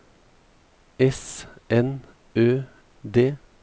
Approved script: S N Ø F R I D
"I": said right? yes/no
no